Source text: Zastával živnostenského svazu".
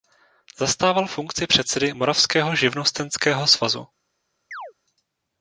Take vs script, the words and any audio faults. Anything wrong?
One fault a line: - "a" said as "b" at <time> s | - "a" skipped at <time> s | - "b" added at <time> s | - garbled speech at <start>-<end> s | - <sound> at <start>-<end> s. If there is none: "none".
- "funkci předsedy Moravského" added at 1.1 s
- chirp at 4.5-4.7 s